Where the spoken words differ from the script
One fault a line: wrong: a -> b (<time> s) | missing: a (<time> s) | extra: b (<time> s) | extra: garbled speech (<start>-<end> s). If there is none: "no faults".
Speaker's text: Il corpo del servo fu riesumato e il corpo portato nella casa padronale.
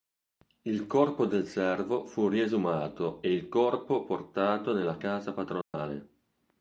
no faults